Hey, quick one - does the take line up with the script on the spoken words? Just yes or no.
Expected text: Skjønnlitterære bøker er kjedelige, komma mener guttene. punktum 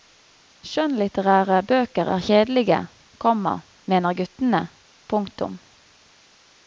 yes